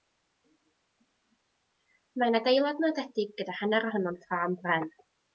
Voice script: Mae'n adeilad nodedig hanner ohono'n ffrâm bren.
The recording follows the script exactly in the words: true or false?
false